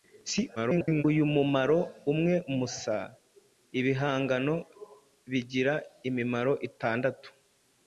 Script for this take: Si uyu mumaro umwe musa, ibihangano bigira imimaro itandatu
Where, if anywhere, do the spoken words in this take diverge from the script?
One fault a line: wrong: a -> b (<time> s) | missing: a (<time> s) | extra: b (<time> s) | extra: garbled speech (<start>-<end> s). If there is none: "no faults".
extra: garbled speech (0.6-1.0 s)